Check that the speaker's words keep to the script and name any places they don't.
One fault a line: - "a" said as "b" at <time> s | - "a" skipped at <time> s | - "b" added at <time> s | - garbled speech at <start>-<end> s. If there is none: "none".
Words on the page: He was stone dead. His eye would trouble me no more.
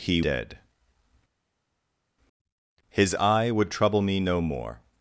- "was stone" skipped at 0.2 s